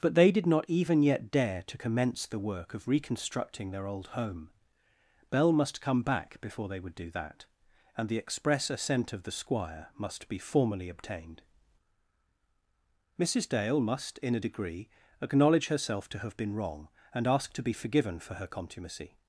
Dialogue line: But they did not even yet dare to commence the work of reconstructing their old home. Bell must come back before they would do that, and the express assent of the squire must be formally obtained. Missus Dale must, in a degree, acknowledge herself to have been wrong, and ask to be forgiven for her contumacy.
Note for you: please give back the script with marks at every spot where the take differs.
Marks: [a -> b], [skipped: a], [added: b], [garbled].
But they did not even yet dare to commence the work of reconstructing their old home. Bell must come back before they would do that, and the express assent of the squire must be formally obtained. Missus Dale must, in a degree, acknowledge herself to have been wrong, and ask to be forgiven for her contumacy.